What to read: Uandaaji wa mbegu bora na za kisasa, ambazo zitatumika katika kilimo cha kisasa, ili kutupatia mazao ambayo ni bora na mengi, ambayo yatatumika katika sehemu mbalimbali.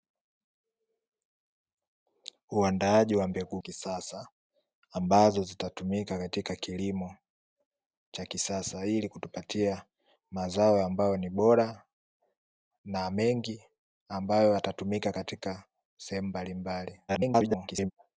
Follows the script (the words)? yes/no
no